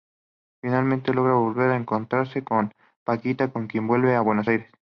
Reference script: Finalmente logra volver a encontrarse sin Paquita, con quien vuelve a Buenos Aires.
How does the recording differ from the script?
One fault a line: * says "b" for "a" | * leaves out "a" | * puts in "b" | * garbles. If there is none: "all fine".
* says "con" for "sin"